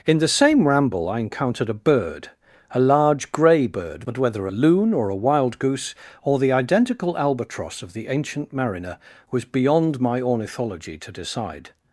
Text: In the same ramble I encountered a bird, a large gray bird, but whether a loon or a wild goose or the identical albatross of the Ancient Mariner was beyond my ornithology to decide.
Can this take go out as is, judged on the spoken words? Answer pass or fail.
pass